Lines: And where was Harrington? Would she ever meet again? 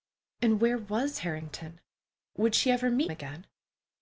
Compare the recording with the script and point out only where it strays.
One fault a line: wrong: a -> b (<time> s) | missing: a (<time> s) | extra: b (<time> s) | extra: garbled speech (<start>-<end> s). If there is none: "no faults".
no faults